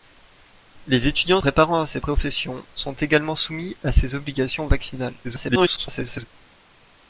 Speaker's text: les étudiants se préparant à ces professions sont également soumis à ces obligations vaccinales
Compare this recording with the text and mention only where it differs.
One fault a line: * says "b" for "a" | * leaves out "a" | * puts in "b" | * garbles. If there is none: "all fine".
* leaves out "se"
* garbles